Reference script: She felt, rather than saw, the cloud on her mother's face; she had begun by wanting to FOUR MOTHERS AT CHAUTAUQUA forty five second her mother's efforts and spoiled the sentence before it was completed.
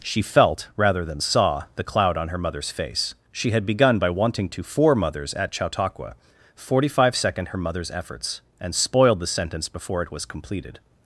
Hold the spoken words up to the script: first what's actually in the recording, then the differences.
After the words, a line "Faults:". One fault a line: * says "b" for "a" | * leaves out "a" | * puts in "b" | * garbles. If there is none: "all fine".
She felt, rather than saw, the cloud on her mother's face; she had begun by wanting to FOUR MOTHERS AT CHAUTAUQUA forty five second her mother's efforts and spoiled the sentence before it was completed.
Faults:
all fine